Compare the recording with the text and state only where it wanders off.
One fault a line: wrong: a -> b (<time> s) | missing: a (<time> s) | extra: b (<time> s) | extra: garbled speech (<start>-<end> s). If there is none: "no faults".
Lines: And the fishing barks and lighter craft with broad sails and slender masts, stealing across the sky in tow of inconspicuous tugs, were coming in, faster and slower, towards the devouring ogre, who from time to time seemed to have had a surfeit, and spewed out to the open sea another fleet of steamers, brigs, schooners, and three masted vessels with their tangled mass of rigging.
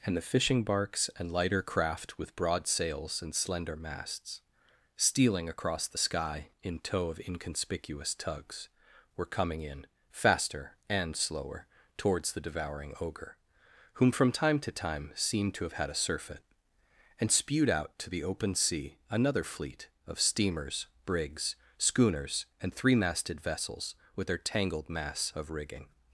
wrong: who -> whom (13.9 s)